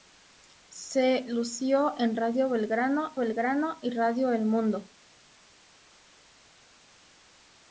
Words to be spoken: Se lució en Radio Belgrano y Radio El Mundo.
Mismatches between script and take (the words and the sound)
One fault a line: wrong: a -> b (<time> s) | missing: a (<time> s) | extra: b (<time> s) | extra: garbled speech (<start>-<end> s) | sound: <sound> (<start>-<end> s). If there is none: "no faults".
extra: Belgrano (3.2 s)